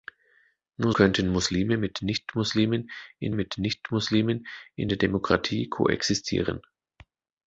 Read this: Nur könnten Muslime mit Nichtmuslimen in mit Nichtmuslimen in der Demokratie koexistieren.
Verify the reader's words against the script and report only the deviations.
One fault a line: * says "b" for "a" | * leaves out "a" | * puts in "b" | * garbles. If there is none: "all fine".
all fine